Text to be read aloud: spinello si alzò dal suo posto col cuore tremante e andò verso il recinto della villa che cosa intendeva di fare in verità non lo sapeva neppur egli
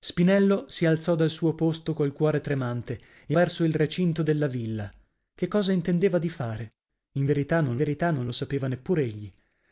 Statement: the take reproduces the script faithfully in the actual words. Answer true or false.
false